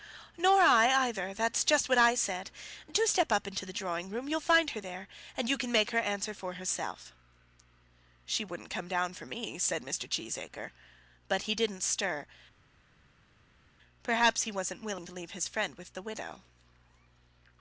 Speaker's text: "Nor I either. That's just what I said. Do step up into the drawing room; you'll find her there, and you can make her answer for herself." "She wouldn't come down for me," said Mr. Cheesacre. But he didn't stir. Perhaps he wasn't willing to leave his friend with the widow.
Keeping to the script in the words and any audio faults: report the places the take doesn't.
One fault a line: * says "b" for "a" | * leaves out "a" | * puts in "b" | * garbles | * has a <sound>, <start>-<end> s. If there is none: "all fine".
all fine